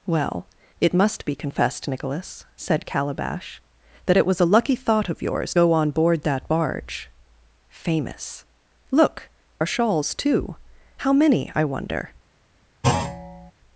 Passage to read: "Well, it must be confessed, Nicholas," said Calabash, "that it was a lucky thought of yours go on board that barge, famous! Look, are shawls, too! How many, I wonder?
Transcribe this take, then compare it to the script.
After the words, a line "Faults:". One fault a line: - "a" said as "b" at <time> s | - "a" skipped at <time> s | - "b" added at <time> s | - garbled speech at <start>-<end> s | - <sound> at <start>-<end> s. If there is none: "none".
"Well, it must be confessed, Nicholas," said Calabash, "that it was a lucky thought of yours go on board that barge, famous! Look, are shawls, too! How many, I wonder?
Faults:
- thud at 12.8-13.5 s